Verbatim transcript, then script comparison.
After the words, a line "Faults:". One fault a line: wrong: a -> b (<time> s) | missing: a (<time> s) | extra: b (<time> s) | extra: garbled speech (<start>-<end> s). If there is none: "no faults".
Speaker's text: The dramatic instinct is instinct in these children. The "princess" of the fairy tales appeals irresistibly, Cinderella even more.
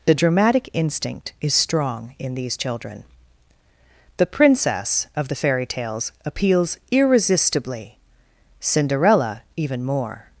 The dramatic instinct is strong in these children. The "princess" of the fairy tales appeals irresistibly, Cinderella even more.
Faults:
wrong: instinct -> strong (1.5 s)